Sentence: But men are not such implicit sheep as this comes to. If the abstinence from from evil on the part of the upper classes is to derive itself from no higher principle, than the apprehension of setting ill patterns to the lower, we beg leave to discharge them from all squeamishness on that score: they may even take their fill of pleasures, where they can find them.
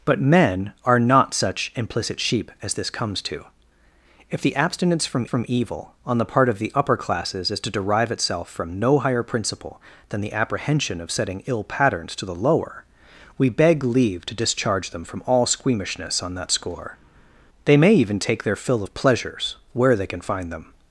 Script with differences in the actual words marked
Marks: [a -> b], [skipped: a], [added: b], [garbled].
But men are not such implicit sheep as this comes to. If the abstinence from from evil on the part of the upper classes is to derive itself from no higher principle, than the apprehension of setting ill patterns to the lower, we beg leave to discharge them from all squeamishness on that score: they may even take their fill of pleasures, where they can find them.